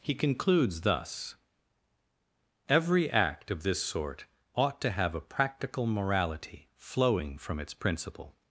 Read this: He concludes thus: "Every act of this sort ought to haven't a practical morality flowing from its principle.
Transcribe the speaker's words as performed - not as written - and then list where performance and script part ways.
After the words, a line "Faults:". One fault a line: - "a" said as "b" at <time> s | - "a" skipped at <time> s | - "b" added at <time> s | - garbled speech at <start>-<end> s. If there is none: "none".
He concludes thus: "Every act of this sort ought to have a practical morality flowing from its principle.
Faults:
- "haven't" said as "have" at 4.9 s